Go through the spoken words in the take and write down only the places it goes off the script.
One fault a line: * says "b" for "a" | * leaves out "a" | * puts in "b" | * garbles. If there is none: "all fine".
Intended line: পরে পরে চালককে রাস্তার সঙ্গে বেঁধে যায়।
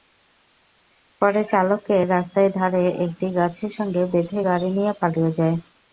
* leaves out "পরে"
* puts in "ধারে একটি গাছের"
* puts in "গাড়ি নিয়ে পালিয়ে"